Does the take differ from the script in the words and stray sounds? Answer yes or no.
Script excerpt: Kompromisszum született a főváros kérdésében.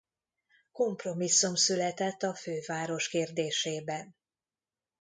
no